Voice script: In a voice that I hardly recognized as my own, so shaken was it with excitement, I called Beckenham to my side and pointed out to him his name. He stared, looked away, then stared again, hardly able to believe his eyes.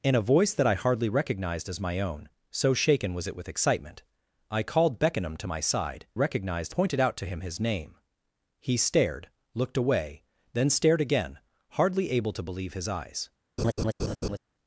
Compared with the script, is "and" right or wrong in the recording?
wrong